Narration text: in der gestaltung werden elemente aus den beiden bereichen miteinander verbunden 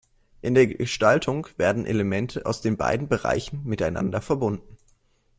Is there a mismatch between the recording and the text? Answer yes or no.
no